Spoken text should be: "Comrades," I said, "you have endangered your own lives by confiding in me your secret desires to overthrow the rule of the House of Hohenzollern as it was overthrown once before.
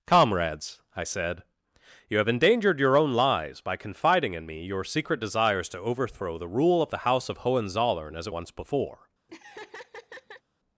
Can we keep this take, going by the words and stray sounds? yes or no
no